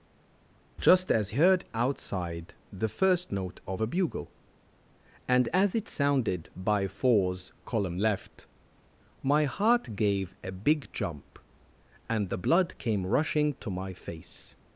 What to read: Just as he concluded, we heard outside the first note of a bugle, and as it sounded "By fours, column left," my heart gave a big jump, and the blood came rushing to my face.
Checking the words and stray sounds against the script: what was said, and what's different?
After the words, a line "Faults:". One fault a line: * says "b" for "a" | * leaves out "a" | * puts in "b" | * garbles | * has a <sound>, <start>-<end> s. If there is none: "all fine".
Just as heard outside the first note of a bugle, and as it sounded "By fours, column left," my heart gave a big jump, and the blood came rushing to my face.
Faults:
* leaves out "he concluded we"